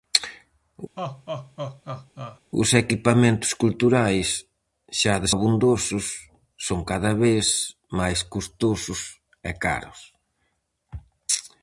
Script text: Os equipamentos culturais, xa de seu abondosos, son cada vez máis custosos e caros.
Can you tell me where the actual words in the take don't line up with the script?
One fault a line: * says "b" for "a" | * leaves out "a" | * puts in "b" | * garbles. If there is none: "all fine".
* leaves out "seu"